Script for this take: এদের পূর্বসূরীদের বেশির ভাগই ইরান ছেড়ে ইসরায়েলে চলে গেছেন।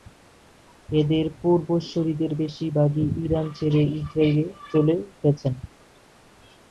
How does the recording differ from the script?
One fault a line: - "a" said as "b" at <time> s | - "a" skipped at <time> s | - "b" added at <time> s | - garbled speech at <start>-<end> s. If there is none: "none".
none